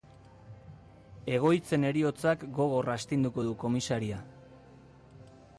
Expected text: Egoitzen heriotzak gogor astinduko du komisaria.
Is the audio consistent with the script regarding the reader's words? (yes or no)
yes